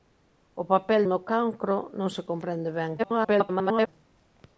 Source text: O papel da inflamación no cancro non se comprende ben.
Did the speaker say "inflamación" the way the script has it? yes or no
no